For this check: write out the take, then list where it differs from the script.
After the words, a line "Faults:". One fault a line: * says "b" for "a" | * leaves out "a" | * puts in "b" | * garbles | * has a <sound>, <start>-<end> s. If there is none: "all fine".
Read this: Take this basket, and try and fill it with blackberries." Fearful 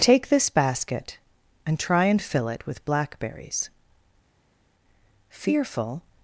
Take this basket, and try and fill it with blackberries." Fearful
Faults:
all fine